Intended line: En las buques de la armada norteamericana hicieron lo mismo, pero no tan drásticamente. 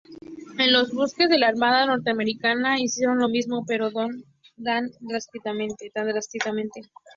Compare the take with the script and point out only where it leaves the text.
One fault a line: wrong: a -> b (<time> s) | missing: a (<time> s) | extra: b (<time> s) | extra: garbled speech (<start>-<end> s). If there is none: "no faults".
wrong: las -> los (0.7 s)